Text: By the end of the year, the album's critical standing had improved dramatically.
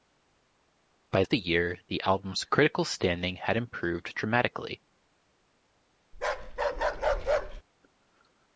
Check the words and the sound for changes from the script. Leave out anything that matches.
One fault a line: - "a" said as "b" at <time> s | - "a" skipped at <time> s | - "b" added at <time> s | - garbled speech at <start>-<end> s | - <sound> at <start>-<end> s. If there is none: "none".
- "the end" skipped at 1.2 s
- bark at 6.1-7.6 s